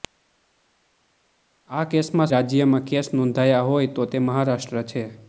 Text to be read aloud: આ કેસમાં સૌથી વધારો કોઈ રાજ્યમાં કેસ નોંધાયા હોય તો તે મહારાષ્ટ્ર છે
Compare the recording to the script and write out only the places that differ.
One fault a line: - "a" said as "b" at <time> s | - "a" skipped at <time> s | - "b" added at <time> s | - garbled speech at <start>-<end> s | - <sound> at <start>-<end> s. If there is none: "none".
- "સૌથી વધારો કોઈ" skipped at 2.3 s